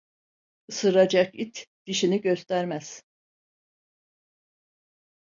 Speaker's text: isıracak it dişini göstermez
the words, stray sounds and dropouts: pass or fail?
pass